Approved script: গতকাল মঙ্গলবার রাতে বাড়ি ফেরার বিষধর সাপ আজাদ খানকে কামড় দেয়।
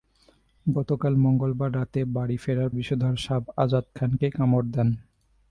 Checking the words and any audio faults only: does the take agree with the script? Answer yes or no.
yes